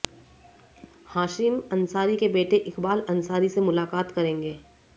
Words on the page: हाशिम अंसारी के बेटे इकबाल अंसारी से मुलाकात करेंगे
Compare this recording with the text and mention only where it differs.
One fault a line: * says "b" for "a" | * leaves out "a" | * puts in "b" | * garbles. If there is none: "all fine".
all fine